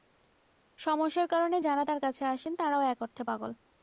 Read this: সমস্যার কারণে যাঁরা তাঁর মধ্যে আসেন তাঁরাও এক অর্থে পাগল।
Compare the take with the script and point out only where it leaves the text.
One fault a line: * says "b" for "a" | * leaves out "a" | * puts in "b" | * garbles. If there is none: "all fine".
* says "কাছে" for "মধ্যে"